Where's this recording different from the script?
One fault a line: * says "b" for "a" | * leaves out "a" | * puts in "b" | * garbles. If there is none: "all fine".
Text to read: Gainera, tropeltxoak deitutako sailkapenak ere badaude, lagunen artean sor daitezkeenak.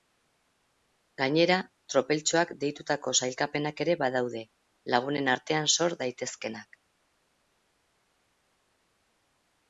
all fine